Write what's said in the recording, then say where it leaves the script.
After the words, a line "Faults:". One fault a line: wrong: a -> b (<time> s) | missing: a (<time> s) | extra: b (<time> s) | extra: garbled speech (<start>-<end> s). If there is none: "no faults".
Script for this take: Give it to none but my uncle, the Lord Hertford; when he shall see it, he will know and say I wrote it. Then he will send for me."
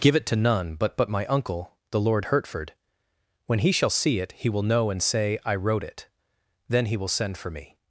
Give it to none but but my uncle, the Lord Hertford; when he shall see it, he will know and say I wrote it. Then he will send for me."
Faults:
extra: but (1.0 s)